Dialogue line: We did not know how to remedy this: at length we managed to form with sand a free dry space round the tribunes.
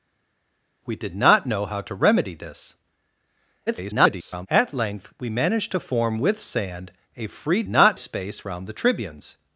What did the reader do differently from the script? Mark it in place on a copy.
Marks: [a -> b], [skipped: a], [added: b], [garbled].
We did not know how to remedy this: [garbled] at length we managed to form with sand a free [dry -> not] space round the tribunes.